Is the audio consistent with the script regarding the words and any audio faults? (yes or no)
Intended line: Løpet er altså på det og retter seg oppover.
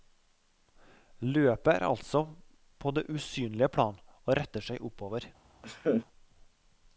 no